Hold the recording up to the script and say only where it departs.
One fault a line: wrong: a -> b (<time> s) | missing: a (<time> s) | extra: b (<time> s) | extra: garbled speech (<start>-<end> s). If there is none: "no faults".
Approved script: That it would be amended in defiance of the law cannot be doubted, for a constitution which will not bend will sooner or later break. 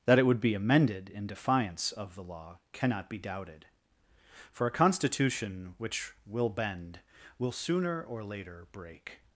missing: not (6.5 s)